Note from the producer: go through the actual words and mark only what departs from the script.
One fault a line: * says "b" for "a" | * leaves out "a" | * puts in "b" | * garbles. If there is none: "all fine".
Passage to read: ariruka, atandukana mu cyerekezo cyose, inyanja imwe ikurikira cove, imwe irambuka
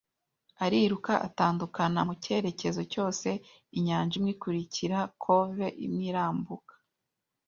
all fine